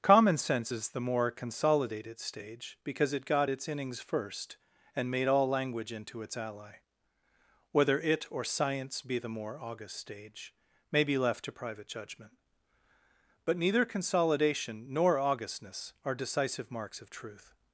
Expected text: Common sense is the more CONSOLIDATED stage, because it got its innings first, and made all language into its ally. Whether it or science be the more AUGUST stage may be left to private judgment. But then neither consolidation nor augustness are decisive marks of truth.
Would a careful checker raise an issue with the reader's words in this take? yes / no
yes